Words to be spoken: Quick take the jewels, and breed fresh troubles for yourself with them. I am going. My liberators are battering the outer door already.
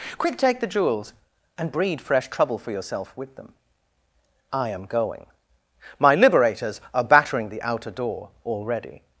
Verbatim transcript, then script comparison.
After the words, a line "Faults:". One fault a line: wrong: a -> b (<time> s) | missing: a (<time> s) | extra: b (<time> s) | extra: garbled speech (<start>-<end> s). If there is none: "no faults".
Quick take the jewels, and breed fresh trouble for yourself with them. I am going. My liberators are battering the outer door already.
Faults:
wrong: troubles -> trouble (2.3 s)